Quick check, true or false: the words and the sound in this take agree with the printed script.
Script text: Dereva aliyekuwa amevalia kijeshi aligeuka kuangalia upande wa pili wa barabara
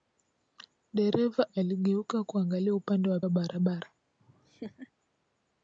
false